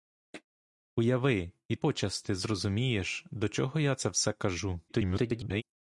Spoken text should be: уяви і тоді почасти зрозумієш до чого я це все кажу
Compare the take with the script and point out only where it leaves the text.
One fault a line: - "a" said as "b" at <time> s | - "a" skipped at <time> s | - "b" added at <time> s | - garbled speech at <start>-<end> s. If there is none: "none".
- "тоді" skipped at 1.8 s
- garbled speech at 4.9-5.6 s